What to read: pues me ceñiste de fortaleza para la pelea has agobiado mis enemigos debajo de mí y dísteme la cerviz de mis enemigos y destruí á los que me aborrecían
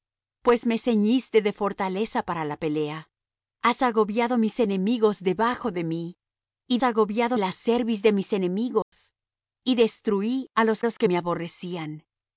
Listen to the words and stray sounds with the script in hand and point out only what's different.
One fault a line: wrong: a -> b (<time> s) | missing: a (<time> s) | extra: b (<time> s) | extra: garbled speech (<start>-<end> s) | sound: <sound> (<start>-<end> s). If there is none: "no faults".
wrong: dísteme -> agobiado (6.8 s)
sound: dropout (8.8-8.9 s)
extra: los (10.8 s)